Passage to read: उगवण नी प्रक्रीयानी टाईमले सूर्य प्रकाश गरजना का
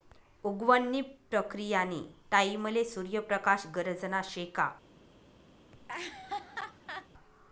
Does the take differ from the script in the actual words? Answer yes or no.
yes